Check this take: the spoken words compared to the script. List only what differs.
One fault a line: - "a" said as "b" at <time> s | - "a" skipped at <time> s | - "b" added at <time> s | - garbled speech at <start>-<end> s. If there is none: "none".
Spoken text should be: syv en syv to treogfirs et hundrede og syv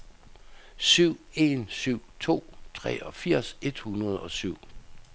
none